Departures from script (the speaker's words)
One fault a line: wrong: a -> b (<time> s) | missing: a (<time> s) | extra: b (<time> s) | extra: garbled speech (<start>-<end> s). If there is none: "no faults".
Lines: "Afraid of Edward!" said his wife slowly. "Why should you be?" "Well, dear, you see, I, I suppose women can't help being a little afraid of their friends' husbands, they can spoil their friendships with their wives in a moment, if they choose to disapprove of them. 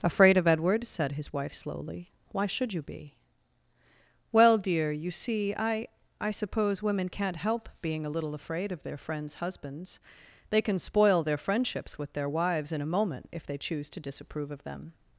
no faults